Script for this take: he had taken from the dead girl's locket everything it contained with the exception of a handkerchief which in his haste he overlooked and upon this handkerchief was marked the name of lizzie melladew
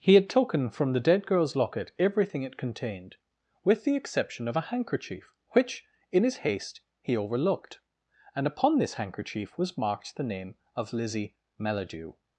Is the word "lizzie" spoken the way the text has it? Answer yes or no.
yes